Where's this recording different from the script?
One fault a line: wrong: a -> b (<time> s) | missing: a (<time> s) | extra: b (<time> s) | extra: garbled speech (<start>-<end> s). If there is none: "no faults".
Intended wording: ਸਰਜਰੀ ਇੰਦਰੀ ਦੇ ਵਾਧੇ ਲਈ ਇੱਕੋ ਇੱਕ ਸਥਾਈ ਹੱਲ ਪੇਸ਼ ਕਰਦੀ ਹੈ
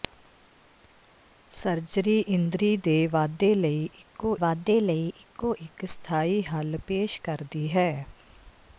extra: ਵਾਧੇ ਲਈ ਇੱਕੋ (4.4 s)